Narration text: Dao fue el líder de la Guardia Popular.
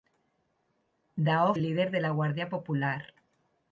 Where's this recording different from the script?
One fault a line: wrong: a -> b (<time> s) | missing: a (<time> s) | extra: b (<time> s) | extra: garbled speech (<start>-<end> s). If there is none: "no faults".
missing: fue (1.5 s)